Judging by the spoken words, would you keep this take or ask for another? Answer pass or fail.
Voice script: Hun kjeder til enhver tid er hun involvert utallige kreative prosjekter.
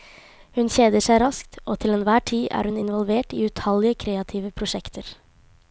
fail